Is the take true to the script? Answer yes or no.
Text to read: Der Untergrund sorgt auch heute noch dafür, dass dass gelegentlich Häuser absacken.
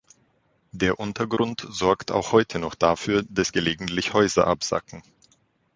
no